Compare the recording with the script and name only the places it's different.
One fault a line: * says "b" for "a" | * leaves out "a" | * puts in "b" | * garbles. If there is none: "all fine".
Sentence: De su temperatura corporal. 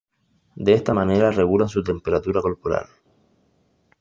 * puts in "esta manera regulan"